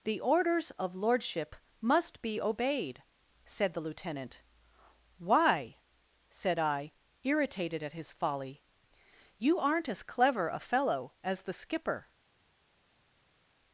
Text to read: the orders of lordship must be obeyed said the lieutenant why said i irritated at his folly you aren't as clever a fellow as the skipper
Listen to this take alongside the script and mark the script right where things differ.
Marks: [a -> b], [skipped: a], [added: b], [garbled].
the orders of lordship must be obeyed said the lieutenant why said i irritated at his folly you aren't as clever a fellow as the skipper